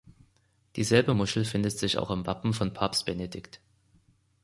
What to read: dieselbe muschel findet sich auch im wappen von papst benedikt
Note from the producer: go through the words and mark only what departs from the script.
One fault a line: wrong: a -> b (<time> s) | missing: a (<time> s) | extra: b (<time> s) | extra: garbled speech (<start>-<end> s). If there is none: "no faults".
no faults